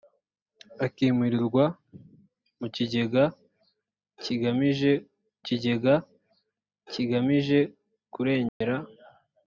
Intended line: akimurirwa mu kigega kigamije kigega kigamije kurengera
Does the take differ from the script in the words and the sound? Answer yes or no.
yes